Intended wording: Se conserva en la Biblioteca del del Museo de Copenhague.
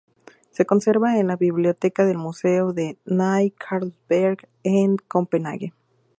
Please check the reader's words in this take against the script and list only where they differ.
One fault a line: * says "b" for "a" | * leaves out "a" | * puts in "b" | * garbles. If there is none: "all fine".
* leaves out "del"
* puts in "Ny Carlsberg en"